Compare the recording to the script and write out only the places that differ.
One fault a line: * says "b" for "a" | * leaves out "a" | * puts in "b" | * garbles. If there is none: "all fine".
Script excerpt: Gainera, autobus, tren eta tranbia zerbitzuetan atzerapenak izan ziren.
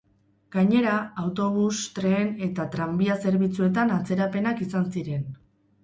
all fine